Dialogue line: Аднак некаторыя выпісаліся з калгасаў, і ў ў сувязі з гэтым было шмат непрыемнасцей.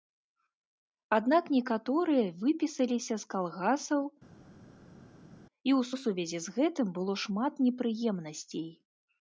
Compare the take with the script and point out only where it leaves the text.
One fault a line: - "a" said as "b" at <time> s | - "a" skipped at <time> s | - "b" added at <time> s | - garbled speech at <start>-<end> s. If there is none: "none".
none